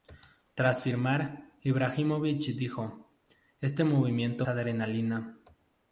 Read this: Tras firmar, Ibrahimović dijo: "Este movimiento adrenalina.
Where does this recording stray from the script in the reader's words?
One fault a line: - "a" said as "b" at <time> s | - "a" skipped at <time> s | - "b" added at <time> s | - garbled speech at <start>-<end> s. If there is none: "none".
none